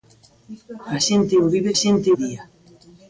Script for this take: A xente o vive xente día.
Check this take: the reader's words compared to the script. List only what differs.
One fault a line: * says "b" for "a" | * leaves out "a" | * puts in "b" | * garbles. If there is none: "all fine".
all fine